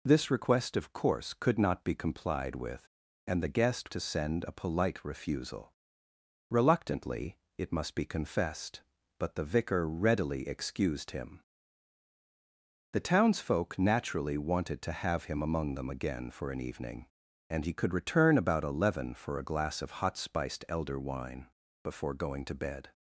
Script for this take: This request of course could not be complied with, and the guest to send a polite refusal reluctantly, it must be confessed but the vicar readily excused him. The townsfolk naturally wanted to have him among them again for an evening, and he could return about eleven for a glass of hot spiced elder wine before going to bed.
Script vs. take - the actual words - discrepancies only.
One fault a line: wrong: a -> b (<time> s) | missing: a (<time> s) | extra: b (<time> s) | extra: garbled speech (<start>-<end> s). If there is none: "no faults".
no faults